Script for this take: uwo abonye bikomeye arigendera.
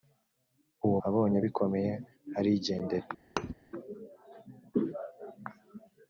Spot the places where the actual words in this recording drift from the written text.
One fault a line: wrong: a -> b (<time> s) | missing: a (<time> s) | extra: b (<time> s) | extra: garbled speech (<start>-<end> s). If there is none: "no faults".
no faults